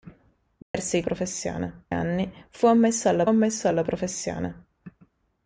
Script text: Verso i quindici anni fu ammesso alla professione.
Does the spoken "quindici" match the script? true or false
false